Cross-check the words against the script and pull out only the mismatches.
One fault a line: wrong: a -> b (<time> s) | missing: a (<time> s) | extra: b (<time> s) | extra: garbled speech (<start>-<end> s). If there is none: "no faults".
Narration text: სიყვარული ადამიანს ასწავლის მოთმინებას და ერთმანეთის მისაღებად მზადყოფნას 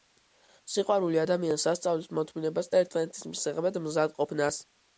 no faults